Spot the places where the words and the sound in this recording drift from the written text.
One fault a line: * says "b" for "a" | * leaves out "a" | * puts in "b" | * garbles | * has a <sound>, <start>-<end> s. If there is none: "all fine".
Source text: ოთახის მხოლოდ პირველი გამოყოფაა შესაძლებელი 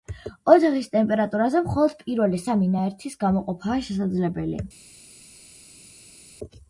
* puts in "ტემპერატურაზე"
* puts in "სამი ნაერთის"